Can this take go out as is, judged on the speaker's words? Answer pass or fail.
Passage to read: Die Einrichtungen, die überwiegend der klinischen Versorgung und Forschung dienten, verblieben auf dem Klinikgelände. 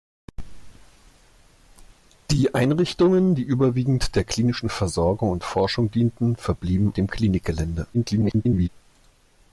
fail